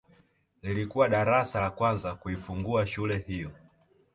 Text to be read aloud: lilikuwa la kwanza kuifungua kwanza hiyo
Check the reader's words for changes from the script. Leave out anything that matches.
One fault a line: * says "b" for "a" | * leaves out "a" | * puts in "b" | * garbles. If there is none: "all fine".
* puts in "darasa"
* says "shule" for "kwanza"